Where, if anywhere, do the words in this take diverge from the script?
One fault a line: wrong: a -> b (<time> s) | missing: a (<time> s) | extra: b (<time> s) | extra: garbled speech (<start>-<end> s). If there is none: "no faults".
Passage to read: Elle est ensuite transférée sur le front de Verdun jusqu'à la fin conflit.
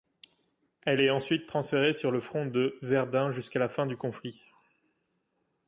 extra: du (3.9 s)